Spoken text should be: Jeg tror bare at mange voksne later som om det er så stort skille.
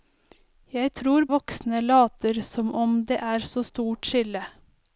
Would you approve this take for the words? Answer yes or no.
no